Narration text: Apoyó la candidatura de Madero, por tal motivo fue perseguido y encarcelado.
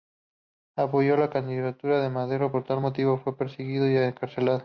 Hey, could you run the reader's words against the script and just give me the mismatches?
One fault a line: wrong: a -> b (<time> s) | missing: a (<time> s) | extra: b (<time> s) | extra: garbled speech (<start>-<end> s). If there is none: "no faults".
no faults